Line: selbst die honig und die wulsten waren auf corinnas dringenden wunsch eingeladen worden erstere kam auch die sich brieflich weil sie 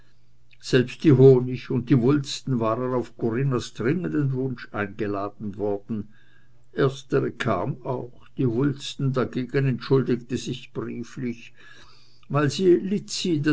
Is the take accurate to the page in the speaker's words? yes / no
no